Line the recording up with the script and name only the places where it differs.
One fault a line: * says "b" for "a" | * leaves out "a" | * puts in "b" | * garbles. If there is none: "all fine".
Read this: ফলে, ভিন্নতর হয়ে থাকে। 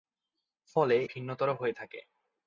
all fine